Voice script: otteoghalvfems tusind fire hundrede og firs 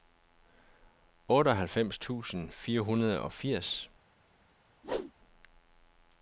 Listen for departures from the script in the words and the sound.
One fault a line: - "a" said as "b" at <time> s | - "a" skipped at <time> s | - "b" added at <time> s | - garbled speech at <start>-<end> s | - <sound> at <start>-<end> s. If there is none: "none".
- whoosh at 4.8-5.1 s